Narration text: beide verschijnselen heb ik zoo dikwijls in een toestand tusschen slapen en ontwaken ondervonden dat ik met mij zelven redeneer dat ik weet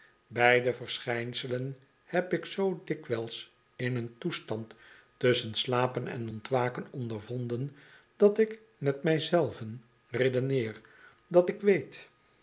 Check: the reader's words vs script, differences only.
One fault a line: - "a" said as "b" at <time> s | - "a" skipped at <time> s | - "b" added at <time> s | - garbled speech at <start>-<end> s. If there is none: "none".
none